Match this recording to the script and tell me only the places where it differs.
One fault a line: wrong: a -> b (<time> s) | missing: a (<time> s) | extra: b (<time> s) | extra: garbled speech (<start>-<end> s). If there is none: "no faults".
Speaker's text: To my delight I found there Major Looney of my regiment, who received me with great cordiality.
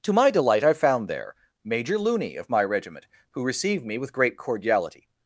no faults